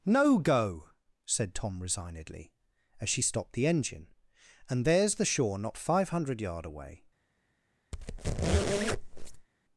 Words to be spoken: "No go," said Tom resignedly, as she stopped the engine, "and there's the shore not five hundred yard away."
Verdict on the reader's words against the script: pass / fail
pass